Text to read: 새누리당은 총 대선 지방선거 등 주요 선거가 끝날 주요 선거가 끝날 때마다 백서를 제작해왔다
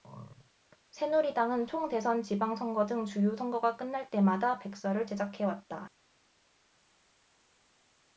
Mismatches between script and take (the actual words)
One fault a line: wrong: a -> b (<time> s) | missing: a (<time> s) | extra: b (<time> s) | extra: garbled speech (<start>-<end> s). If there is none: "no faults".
missing: 주요 선거가 끝날 (4.1 s)